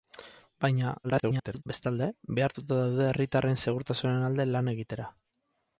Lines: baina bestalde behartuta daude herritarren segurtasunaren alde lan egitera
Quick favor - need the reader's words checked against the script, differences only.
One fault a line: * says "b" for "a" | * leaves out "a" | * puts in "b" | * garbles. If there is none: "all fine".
* garbles